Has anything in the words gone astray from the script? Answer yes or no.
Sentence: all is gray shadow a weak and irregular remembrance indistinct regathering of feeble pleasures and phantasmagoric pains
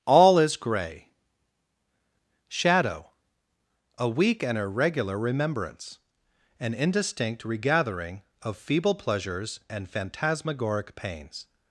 yes